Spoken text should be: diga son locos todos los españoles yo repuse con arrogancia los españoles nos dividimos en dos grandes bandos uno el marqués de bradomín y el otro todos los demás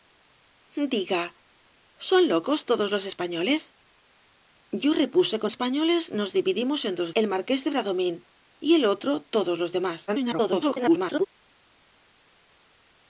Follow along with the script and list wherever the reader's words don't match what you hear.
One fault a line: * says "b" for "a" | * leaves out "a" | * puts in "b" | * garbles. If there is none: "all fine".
* leaves out "arrogancia los"
* leaves out "grandes bandos uno"
* garbles